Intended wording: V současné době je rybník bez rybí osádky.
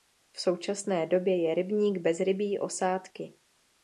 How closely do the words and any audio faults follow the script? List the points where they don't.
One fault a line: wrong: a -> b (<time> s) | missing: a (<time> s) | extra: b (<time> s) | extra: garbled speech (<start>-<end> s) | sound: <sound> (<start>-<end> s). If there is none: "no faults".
no faults